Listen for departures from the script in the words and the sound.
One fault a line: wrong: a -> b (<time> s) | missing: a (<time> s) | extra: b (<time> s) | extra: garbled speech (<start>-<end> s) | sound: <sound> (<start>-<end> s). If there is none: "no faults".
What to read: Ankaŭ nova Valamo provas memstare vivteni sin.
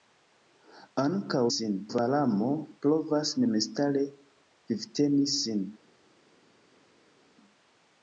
wrong: nova -> sin (1.5 s)